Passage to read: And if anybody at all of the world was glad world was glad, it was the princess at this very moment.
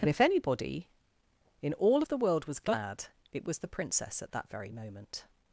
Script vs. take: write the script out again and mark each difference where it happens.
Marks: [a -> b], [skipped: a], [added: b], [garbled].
And if anybody [at -> in] all of the world was glad [skipped: world was glad,] it was the princess at [this -> that] very moment.